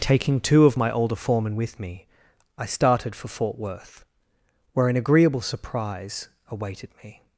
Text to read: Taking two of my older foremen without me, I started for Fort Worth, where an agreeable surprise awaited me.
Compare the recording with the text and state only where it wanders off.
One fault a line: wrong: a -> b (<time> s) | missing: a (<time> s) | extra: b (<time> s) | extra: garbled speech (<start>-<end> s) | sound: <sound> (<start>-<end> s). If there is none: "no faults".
wrong: without -> with (1.6 s)